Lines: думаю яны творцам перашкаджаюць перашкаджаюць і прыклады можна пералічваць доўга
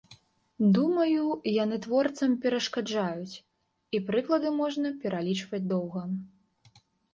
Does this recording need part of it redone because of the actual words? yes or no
yes